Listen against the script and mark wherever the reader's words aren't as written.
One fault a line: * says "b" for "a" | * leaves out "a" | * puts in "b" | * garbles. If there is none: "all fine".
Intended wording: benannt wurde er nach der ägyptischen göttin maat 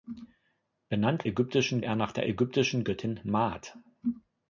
* says "ägyptischen" for "wurde"